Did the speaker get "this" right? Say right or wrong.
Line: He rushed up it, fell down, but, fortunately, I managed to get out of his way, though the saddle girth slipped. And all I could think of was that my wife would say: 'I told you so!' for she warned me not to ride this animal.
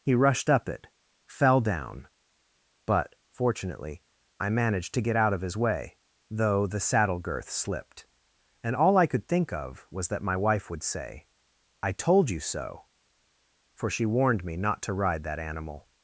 wrong